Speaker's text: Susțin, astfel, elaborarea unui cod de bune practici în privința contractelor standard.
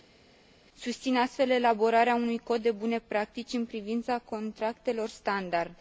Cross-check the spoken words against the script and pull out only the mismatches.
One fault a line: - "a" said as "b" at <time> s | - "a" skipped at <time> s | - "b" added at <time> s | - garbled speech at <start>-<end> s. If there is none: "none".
none